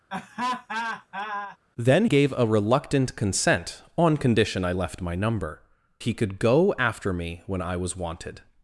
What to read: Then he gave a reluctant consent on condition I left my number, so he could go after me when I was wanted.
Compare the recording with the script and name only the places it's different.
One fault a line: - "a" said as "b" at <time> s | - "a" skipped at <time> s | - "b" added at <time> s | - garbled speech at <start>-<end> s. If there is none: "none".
- "he" skipped at 2.1 s
- "so" skipped at 5.6 s